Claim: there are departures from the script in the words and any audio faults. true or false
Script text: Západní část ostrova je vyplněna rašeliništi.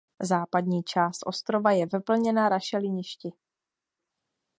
false